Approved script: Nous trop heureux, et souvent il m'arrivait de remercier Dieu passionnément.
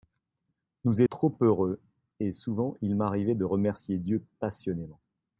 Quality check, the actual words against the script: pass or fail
pass